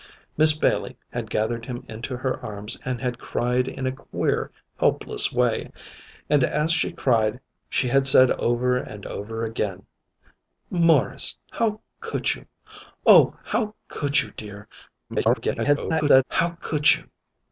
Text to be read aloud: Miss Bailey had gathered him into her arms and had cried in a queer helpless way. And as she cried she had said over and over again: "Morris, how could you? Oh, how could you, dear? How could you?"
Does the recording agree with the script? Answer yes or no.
no